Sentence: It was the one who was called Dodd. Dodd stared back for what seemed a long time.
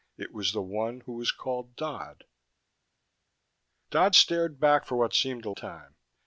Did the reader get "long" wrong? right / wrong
wrong